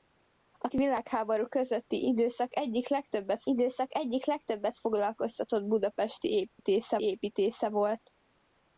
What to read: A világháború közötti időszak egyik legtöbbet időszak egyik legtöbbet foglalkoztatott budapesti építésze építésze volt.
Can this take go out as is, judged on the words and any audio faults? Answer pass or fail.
fail